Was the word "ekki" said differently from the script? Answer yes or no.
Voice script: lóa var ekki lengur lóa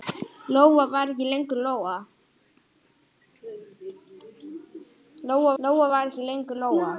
no